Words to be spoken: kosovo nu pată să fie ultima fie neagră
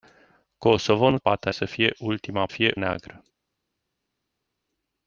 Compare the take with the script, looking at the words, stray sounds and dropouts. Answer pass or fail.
pass